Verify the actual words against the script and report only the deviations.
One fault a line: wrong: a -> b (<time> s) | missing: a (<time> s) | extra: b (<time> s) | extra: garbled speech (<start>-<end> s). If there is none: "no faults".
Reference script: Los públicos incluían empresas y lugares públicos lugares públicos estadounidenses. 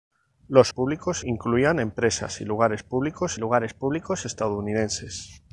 no faults